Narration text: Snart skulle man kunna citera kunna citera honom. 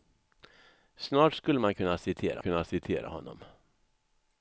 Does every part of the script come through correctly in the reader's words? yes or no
yes